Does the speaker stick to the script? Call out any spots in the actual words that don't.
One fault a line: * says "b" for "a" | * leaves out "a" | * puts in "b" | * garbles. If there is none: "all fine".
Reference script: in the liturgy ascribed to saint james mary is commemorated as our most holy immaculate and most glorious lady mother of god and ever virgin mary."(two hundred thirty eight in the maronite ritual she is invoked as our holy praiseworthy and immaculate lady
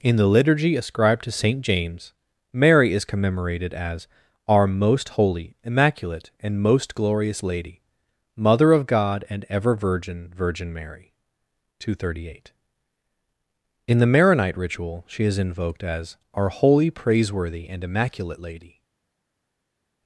* puts in "virgin"